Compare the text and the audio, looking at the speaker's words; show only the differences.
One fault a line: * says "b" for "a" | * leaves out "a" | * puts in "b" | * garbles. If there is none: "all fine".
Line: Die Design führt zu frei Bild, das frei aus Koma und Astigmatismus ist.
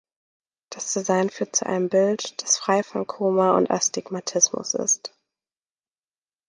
* says "Das" for "Die"
* says "einem" for "frei"
* says "von" for "aus"